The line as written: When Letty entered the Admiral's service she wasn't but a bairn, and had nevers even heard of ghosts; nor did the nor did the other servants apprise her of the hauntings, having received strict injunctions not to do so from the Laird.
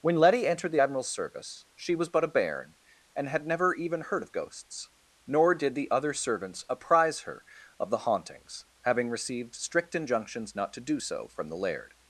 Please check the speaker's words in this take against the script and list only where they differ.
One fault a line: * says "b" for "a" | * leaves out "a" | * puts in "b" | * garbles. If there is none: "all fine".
* says "was" for "wasn't"
* says "never" for "nevers"
* leaves out "nor did the"